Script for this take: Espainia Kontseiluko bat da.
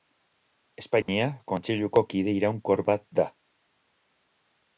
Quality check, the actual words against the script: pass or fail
fail